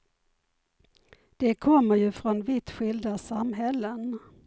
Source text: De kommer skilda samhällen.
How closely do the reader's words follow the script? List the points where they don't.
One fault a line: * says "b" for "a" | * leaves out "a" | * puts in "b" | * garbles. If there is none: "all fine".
* puts in "ju från vitt"